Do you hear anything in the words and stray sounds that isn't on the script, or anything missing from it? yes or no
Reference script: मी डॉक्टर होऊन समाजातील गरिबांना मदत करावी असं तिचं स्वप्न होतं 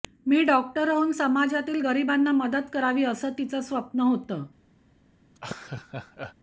yes